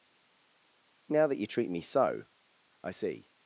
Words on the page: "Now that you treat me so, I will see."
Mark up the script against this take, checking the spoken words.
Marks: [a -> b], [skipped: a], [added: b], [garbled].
"Now that you treat me so, I [skipped: will] see."